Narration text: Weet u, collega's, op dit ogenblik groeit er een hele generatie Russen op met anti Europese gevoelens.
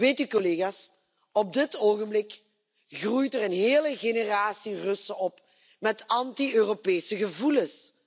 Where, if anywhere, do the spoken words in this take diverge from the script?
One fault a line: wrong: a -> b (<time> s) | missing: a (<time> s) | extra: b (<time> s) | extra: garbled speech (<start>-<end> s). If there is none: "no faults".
no faults